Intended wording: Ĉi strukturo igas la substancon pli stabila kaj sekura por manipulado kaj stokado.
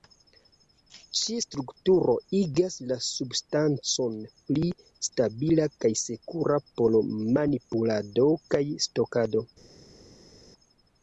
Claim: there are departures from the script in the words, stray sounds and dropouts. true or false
false